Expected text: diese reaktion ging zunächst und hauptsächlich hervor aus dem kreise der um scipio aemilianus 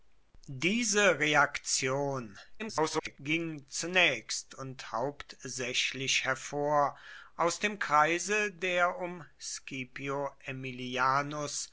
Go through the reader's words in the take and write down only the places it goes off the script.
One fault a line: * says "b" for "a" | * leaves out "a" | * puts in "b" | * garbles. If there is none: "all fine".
* garbles